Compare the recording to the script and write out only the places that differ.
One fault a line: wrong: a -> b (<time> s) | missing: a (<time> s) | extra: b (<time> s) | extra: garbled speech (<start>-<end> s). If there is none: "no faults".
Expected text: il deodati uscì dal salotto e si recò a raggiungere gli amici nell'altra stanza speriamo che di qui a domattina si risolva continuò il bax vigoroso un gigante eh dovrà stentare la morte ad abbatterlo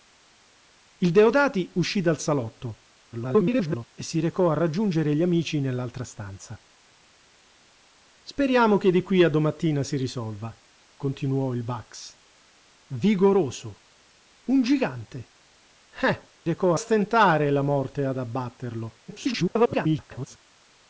extra: garbled speech (3.1-3.9 s)
wrong: dovrà -> recò (16.4 s)
extra: garbled speech (19.1-20.4 s)